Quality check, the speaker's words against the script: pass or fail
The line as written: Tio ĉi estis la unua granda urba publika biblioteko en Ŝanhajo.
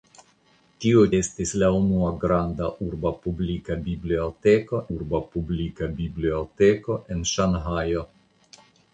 fail